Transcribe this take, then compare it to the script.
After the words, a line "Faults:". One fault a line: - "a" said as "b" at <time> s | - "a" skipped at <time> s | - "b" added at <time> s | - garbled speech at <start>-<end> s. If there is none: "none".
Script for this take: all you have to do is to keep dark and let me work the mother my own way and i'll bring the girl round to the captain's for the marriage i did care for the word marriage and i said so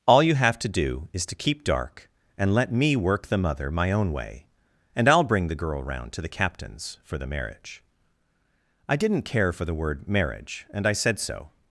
all you have to do is to keep dark and let me work the mother my own way and i'll bring the girl round to the captain's for the marriage i didn't care for the word marriage and i said so
Faults:
- "did" said as "didn't" at 8.9 s